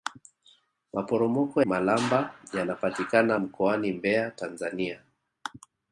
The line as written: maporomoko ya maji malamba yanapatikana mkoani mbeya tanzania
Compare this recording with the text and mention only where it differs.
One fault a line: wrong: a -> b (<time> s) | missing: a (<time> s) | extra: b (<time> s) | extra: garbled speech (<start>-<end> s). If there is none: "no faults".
missing: ya maji (1.6 s)